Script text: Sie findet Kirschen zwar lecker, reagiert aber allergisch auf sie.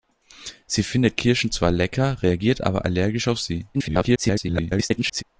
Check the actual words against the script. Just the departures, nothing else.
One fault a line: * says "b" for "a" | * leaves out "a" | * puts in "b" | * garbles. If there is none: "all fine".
* garbles